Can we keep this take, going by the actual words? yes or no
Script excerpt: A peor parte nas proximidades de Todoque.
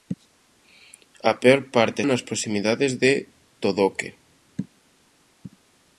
yes